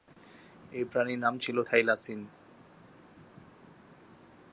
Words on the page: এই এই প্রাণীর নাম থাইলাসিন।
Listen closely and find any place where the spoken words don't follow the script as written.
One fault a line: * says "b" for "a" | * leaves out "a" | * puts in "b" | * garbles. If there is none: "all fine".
* leaves out "এই"
* puts in "ছিল"